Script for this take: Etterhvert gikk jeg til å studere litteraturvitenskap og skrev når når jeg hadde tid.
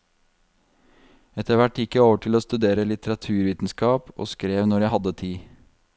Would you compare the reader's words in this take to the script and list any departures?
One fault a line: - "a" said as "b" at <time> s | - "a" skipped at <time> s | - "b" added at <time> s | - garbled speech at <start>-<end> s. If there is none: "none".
- "over" added at 2.0 s
- "når" skipped at 4.9 s